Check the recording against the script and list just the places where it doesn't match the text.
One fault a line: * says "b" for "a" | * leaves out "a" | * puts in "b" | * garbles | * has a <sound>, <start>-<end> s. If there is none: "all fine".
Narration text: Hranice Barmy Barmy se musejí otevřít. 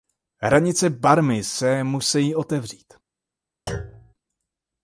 * leaves out "Barmy"
* has a thud, 3.7-4.1 s